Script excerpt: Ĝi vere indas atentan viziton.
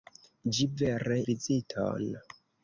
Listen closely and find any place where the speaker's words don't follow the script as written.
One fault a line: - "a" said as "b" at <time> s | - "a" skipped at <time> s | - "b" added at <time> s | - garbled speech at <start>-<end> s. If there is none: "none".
- "indas atentan" skipped at 1.2 s